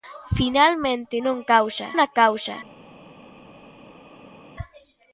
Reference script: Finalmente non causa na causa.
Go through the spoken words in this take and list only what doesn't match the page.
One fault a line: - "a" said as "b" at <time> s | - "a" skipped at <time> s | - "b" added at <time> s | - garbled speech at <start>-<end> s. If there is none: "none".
none